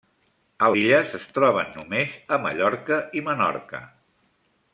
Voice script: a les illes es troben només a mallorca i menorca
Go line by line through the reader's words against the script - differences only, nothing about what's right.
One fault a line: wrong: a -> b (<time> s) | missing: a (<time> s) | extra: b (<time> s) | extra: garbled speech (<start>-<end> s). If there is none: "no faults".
missing: les (0.7 s)